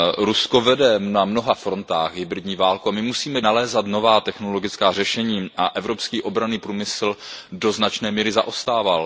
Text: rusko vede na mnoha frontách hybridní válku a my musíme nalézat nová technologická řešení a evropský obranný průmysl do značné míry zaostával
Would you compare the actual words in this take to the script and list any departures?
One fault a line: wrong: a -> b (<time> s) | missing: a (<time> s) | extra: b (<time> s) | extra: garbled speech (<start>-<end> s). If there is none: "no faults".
no faults